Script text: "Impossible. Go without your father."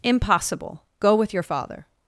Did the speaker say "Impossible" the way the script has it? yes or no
yes